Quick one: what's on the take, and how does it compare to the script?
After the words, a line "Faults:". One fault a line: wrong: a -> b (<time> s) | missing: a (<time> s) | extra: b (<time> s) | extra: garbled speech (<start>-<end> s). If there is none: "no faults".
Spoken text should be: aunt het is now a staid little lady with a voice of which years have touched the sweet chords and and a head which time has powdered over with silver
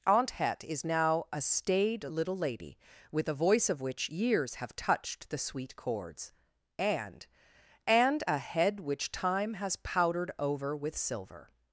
aunt het is now a staid little lady with a voice of which years have touched the sweet chords and and a head which time has powdered over with silver
Faults:
no faults